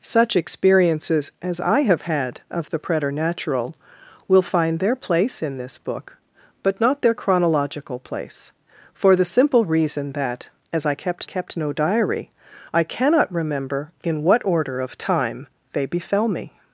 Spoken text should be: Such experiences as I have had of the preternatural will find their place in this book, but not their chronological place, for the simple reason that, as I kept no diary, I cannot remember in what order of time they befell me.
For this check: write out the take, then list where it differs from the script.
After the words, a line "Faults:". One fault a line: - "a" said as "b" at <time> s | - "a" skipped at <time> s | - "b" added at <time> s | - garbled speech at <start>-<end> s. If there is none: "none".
Such experiences as I have had of the preternatural will find their place in this book, but not their chronological place, for the simple reason that, as I kept kept no diary, I cannot remember in what order of time they befell me.
Faults:
- "kept" added at 11.2 s